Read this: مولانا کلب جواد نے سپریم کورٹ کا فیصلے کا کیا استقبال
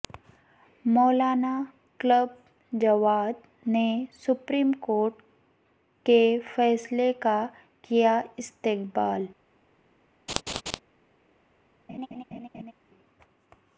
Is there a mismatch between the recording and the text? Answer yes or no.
yes